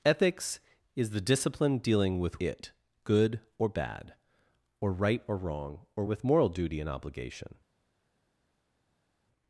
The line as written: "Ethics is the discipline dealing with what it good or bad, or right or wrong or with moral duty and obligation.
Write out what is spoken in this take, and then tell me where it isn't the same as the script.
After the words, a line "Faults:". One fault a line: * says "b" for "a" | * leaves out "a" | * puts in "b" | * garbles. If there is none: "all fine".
"Ethics is the discipline dealing with it good or bad, or right or wrong or with moral duty and obligation.
Faults:
* leaves out "what"